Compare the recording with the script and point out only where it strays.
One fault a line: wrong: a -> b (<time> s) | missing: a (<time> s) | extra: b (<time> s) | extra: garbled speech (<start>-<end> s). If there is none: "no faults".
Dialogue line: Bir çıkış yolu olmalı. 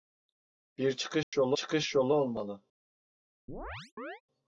extra: çıkış yolu (1.5 s)